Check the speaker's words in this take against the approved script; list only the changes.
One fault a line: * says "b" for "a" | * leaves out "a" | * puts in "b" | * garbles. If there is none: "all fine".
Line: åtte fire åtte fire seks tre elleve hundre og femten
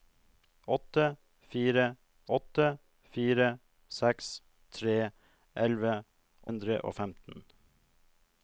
all fine